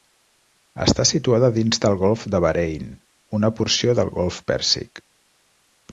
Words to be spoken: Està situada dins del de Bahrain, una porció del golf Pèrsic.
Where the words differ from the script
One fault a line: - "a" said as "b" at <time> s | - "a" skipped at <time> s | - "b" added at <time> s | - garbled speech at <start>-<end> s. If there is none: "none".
- "golf" added at 2.0 s